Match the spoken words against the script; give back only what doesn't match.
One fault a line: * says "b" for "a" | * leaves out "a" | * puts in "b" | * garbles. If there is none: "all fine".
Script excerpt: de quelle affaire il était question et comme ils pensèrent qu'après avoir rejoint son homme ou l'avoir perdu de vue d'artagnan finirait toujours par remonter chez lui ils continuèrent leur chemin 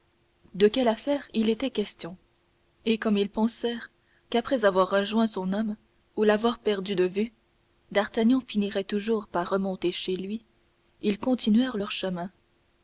all fine